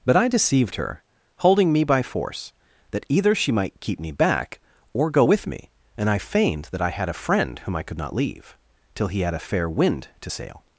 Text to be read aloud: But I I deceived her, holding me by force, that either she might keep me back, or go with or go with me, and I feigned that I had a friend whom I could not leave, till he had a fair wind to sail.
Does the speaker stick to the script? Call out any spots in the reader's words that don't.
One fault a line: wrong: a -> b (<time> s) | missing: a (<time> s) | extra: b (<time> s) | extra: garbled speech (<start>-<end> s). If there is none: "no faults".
missing: I (0.3 s)
missing: or go with (5.5 s)